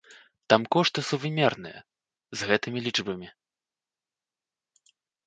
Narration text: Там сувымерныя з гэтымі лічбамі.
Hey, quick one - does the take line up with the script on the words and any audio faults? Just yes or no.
no